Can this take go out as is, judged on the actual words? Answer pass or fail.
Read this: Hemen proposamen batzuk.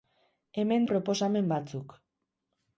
pass